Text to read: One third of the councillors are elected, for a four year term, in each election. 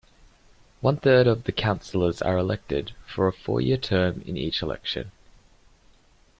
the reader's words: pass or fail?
pass